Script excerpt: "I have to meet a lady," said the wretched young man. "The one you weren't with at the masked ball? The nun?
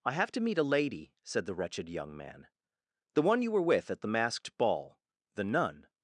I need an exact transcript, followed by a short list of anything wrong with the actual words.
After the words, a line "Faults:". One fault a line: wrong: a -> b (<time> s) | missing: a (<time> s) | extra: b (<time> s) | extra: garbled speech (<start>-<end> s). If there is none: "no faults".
"I have to meet a lady," said the wretched young man. "The one you were with at the masked ball? The nun?
Faults:
wrong: weren't -> were (3.5 s)